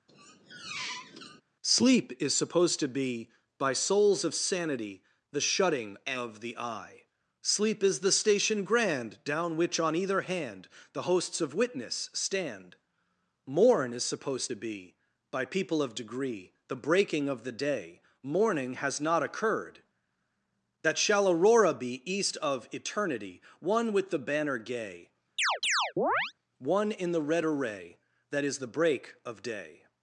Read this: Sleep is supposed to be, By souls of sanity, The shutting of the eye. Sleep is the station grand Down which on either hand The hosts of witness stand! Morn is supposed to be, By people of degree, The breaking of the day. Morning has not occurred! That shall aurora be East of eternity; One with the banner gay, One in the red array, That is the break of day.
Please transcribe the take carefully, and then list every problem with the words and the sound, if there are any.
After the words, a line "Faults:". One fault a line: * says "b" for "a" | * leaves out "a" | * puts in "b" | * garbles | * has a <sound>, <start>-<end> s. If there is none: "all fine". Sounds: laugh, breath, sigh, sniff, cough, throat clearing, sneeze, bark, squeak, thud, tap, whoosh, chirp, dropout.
Sleep is supposed to be, By souls of sanity, The shutting of the eye. Sleep is the station grand Down which on either hand The hosts of witness stand! Morn is supposed to be, By people of degree, The breaking of the day. Morning has not occurred! That shall aurora be East of eternity; One with the banner gay, One in the red array, That is the break of day.
Faults:
* has a squeak, 0.1-1.4 s
* has a chirp, 25.4-26.3 s